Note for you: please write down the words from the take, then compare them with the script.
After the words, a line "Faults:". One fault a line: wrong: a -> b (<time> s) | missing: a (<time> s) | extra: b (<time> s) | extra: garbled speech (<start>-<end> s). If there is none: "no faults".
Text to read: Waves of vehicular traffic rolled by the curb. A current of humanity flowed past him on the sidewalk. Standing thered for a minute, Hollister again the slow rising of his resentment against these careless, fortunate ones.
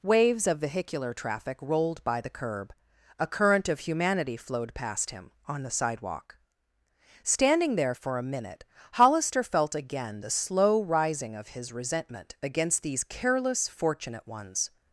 Waves of vehicular traffic rolled by the curb. A current of humanity flowed past him on the sidewalk. Standing there for a minute, Hollister felt again the slow rising of his resentment against these careless, fortunate ones.
Faults:
wrong: thered -> there (7.8 s)
extra: felt (9.4 s)